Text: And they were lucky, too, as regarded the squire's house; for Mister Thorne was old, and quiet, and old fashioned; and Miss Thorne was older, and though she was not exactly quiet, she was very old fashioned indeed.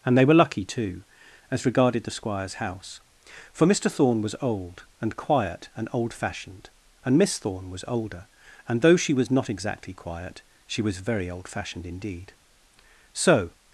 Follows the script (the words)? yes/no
no